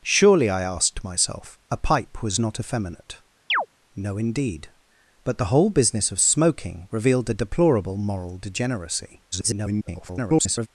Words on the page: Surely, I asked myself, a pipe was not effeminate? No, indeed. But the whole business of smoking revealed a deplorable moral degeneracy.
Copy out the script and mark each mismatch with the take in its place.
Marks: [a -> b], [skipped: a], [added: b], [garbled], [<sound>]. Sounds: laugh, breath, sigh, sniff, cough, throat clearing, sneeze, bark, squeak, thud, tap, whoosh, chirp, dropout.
Surely, I asked myself, a pipe was not effeminate? [chirp] No, indeed. But the whole business of smoking revealed a deplorable moral degeneracy. [garbled]